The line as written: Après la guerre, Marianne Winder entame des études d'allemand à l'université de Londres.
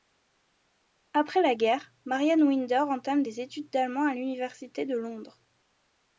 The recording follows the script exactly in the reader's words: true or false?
true